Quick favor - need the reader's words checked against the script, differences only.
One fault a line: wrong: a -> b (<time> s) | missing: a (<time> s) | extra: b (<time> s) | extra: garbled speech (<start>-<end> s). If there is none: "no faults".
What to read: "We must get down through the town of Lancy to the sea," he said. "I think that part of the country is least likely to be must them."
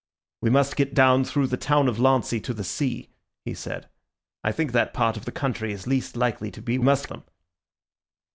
no faults